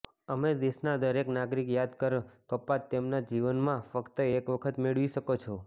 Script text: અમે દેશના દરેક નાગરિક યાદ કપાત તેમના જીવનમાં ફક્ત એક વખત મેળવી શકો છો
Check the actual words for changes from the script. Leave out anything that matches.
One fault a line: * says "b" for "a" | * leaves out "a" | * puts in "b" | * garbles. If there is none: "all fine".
* puts in "કર"